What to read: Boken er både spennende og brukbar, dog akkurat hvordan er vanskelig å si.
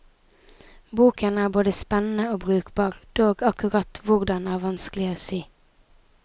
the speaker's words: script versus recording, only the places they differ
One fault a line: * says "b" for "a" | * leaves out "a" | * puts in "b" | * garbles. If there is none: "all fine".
all fine